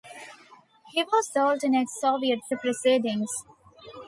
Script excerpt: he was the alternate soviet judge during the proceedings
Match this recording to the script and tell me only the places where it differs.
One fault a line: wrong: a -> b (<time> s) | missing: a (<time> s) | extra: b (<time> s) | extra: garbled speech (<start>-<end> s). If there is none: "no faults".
missing: judge during (2.4 s)